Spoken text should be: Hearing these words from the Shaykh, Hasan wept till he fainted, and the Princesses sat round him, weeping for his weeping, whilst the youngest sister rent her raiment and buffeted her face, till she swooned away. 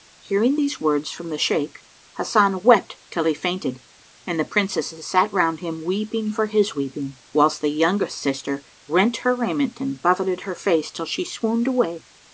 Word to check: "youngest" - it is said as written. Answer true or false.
true